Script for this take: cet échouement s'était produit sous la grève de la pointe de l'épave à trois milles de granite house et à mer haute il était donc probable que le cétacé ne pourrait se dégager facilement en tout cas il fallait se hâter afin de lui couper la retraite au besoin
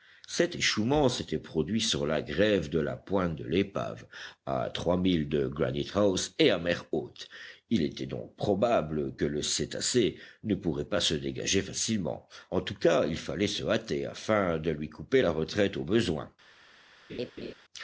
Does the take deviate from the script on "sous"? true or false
true